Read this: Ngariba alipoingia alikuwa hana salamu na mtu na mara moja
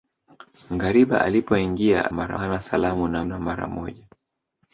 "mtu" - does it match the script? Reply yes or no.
no